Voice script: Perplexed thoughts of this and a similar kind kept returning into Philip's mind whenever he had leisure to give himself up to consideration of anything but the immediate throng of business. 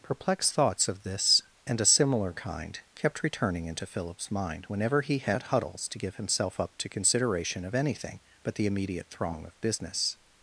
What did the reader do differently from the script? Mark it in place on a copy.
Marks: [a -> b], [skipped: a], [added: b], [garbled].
Perplexed thoughts of this and a similar kind kept returning into Philip's mind whenever he had [leisure -> huddles] to give himself up to consideration of anything but the immediate throng of business.